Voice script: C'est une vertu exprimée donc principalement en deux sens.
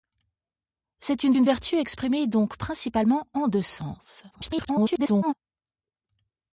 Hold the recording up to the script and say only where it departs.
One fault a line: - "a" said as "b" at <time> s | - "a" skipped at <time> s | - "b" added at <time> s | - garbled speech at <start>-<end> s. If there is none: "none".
- "une" added at 1.3 s
- garbled speech at 4.3-5.3 s